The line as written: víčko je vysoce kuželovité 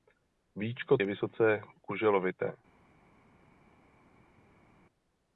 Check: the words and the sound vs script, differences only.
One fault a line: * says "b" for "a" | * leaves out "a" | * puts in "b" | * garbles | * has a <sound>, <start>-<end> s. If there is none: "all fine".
all fine